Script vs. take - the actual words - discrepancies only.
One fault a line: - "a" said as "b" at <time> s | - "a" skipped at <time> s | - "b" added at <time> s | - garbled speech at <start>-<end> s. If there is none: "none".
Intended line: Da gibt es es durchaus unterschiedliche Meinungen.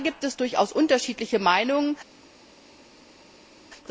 - "es" skipped at 0.3 s